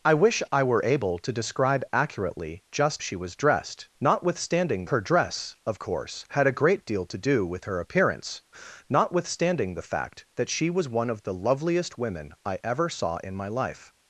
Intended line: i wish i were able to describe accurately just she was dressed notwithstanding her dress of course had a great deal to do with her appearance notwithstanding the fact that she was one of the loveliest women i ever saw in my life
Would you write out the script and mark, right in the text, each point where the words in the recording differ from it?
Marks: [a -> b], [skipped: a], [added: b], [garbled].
i wish i were able to describe accurately just she was dressed notwithstanding her dress of course had a great deal to do with her appearance notwithstanding the fact that she was one of the loveliest women i ever saw in my life